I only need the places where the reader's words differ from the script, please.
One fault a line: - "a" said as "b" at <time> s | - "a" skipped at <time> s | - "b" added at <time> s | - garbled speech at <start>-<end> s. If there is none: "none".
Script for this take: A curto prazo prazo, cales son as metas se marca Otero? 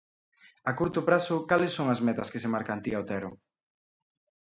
- "prazo" skipped at 1.4 s
- "que" added at 2.3 s
- "Antía" added at 2.7 s